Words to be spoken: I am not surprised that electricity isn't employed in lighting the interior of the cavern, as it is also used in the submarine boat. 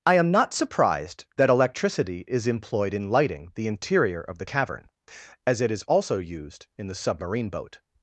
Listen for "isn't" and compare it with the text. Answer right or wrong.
wrong